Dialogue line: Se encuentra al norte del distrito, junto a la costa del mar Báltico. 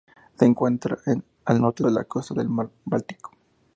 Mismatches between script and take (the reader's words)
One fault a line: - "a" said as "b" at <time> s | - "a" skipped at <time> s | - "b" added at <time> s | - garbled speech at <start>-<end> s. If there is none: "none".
- "del distrito junto" skipped at 1.8 s